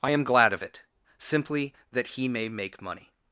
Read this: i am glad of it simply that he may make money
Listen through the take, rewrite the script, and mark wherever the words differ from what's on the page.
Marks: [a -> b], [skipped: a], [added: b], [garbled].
i am glad of it simply that he may make money